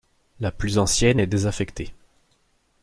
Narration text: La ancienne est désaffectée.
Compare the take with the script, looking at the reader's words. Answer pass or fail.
fail